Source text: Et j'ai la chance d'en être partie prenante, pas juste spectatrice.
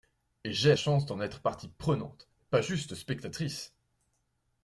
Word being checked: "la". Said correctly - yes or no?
no